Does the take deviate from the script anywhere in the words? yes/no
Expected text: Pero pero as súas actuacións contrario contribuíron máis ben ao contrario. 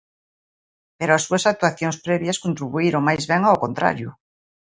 yes